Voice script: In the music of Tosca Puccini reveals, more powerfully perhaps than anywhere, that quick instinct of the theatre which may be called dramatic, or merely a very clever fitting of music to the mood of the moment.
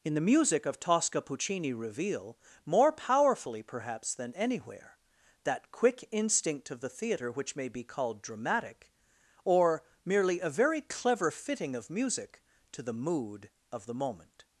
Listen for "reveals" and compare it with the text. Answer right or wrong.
wrong